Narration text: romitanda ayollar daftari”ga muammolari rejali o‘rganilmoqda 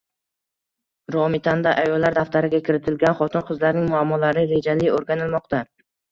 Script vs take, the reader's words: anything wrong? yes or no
yes